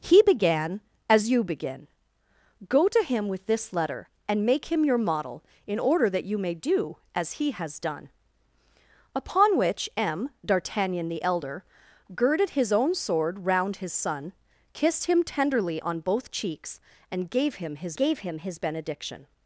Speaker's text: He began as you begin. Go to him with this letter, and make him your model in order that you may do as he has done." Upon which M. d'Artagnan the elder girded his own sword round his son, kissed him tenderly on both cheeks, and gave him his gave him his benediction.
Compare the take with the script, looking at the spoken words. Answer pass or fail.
pass